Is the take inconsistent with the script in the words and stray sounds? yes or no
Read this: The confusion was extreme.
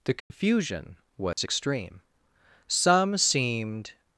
yes